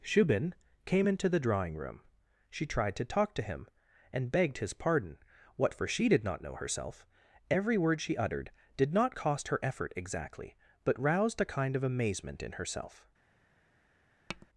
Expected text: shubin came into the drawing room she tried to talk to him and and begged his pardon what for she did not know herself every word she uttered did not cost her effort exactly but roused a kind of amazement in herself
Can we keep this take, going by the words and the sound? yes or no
no